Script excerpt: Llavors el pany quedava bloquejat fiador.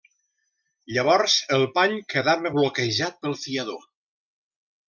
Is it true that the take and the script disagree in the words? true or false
true